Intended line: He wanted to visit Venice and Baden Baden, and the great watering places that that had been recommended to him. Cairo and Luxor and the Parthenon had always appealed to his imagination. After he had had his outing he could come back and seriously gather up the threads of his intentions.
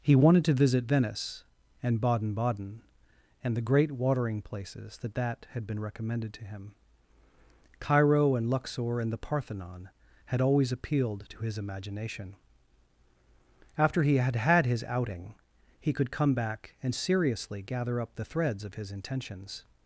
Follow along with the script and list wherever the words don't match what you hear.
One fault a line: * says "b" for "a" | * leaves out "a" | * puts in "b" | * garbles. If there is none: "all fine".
all fine